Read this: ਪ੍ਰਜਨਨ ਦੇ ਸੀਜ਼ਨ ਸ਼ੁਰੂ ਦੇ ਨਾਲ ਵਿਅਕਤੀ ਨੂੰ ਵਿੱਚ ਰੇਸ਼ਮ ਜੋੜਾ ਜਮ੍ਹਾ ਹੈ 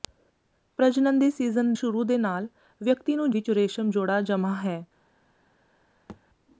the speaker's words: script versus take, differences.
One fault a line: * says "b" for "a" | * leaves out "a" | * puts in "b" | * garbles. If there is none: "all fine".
all fine